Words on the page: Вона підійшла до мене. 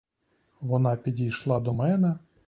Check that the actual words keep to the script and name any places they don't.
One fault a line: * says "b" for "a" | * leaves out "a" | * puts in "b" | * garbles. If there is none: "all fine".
all fine